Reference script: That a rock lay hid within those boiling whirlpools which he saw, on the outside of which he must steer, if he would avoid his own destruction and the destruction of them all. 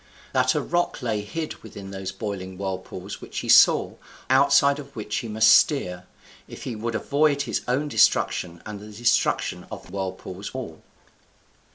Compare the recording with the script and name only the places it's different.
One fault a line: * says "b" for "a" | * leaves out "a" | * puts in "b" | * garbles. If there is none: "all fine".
* leaves out "on the"
* says "whirlpools" for "them"